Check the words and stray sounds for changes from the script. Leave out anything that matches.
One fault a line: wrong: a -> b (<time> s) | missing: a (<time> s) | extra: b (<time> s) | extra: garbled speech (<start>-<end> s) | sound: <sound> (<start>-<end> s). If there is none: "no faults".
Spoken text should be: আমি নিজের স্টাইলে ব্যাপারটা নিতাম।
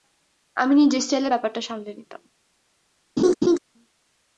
extra: সামলে (1.6 s)
sound: laugh (3.2-3.6 s)